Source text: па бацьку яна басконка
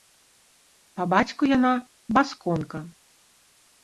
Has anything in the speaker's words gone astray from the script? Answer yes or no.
no